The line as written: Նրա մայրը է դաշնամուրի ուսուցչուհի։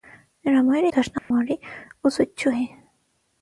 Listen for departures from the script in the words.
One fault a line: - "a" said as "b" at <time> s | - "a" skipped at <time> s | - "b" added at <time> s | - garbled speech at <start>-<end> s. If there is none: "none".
none